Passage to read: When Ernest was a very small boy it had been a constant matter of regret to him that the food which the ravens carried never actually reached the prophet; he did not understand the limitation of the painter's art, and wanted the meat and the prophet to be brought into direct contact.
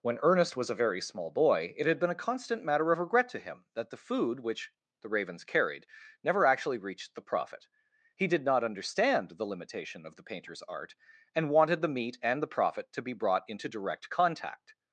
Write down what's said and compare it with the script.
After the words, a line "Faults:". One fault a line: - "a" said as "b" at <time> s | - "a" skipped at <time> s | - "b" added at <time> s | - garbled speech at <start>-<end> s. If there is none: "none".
When Ernest was a very small boy it had been a constant matter of regret to him that the food which the ravens carried never actually reached the prophet; he did not understand the limitation of the painter's art, and wanted the meat and the prophet to be brought into direct contact.
Faults:
none